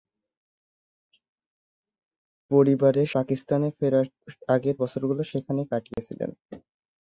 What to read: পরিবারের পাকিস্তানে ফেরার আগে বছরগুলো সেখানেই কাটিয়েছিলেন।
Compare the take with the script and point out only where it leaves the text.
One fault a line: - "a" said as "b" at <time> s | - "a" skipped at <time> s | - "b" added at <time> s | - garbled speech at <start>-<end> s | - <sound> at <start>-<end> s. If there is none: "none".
- dropout at 5.9-6.0 s